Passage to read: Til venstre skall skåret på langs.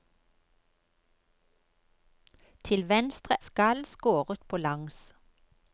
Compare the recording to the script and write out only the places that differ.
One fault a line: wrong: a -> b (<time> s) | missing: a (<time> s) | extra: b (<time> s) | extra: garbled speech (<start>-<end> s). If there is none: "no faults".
no faults